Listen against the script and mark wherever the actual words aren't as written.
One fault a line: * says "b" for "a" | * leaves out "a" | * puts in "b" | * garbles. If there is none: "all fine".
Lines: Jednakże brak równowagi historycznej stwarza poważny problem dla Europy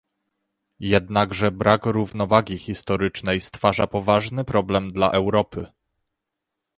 all fine